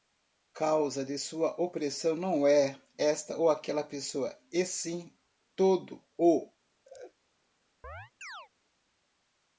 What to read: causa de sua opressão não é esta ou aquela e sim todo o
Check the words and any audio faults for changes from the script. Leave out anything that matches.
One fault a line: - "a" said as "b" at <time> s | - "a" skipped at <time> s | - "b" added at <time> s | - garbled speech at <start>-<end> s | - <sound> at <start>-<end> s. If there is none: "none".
- "pessoa" added at 3.8 s
- laugh at 6.8-7.1 s
- chirp at 7.8-8.5 s